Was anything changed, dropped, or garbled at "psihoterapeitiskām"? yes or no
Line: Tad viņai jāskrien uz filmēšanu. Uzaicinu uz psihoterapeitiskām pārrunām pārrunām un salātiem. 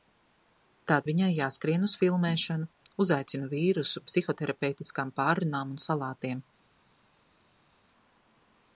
no